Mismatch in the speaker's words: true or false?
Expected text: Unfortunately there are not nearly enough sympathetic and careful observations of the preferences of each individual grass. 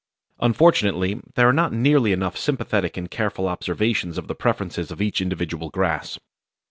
false